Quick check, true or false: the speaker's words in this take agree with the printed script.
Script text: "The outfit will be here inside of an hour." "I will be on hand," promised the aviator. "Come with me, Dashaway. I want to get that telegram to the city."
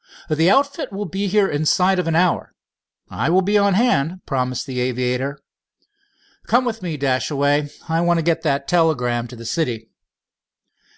true